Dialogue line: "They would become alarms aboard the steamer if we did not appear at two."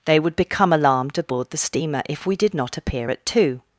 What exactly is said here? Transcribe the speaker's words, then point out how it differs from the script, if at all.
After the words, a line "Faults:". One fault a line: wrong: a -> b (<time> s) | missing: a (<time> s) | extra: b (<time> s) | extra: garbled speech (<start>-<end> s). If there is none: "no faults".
"They would become alarmed aboard the steamer if we did not appear at two."
Faults:
wrong: alarms -> alarmed (0.7 s)